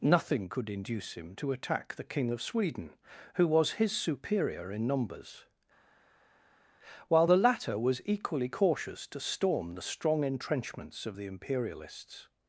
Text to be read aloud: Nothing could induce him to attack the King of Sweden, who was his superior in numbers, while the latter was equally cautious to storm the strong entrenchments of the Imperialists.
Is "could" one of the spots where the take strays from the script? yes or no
no